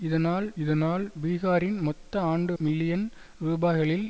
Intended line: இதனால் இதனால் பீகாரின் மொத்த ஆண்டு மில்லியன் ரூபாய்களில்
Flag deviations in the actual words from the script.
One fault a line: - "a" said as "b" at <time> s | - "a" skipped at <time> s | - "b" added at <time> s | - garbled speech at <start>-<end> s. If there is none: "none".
none